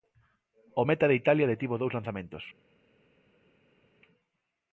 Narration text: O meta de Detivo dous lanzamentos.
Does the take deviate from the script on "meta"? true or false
false